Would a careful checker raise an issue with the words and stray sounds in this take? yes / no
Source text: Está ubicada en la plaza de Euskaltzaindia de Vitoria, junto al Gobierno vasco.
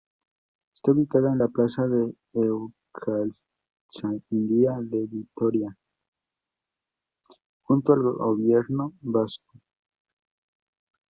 no